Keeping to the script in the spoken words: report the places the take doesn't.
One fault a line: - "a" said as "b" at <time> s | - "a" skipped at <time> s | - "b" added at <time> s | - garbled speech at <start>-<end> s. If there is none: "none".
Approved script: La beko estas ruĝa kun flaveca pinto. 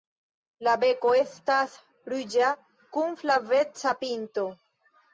none